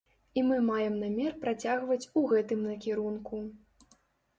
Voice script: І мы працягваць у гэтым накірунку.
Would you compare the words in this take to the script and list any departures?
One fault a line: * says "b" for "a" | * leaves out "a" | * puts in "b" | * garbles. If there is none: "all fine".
* puts in "маем намер"